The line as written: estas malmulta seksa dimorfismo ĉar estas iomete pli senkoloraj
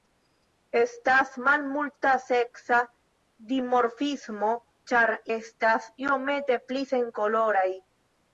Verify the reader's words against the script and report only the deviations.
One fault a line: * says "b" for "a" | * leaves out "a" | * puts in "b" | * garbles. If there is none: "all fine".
all fine